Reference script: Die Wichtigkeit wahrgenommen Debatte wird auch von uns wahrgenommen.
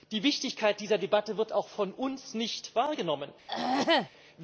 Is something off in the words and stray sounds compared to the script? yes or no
yes